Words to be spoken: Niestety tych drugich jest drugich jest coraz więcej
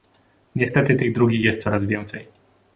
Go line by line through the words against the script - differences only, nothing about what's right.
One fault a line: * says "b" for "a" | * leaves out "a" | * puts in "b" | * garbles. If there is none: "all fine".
* leaves out "drugich jest"